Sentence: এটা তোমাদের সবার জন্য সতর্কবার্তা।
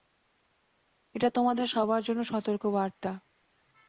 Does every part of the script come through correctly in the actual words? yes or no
yes